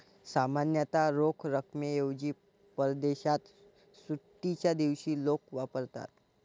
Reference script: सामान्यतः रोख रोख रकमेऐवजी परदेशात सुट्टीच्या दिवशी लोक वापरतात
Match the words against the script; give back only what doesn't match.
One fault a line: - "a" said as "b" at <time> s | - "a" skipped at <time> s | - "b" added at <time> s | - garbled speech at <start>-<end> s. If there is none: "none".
- "रोख" skipped at 1.4 s